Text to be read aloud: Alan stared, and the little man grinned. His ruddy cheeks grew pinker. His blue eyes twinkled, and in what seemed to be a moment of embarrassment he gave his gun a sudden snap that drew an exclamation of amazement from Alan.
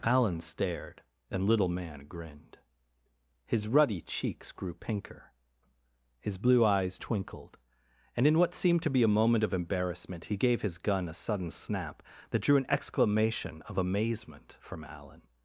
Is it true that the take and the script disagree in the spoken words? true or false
true